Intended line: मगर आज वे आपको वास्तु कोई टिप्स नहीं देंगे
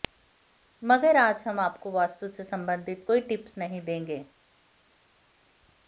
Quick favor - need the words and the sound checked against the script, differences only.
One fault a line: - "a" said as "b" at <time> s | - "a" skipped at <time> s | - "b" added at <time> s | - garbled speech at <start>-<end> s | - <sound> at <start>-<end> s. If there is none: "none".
- "वे" said as "हम" at 1.5 s
- "से संबंधित" added at 2.3 s